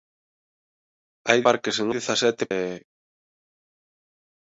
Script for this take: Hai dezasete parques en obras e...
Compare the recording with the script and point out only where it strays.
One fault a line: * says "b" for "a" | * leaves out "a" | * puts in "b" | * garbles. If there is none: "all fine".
* leaves out "dezasete"
* says "dezasete" for "obras"